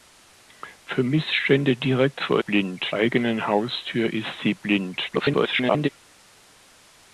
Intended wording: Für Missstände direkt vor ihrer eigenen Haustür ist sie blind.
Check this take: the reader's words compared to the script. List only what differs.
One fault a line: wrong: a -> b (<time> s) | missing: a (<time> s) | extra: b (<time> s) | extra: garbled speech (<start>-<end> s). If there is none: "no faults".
wrong: ihrer -> blind (2.4 s)
extra: garbled speech (5.1-5.9 s)